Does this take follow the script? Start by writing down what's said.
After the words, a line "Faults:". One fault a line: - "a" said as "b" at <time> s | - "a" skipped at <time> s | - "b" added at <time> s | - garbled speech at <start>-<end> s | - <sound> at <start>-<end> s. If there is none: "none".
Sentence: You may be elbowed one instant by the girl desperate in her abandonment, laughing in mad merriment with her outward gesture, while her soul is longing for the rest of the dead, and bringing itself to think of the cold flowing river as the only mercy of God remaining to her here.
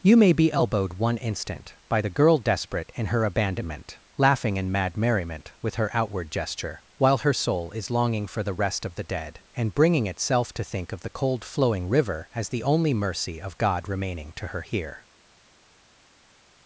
You may be elbowed one instant by the girl desperate in her abandonment, laughing in mad merriment with her outward gesture, while her soul is longing for the rest of the dead, and bringing itself to think of the cold flowing river as the only mercy of God remaining to her here.
Faults:
none